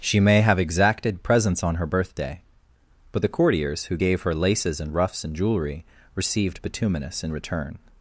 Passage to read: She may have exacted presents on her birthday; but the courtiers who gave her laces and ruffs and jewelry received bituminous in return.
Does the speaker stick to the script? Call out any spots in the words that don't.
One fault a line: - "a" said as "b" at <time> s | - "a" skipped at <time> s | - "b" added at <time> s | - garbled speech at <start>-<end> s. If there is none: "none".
none